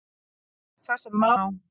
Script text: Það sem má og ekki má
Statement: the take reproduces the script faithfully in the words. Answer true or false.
false